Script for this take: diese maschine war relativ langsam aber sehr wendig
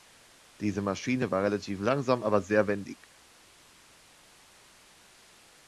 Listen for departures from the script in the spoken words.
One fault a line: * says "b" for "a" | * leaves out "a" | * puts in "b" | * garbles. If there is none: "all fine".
all fine